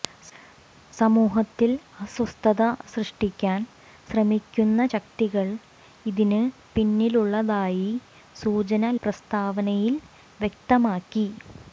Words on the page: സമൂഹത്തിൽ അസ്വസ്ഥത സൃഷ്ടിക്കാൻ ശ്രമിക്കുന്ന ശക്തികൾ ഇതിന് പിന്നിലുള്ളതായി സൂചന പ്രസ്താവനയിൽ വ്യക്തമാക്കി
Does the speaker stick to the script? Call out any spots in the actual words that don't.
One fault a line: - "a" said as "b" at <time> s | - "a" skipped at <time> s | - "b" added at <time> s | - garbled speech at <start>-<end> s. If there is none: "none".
none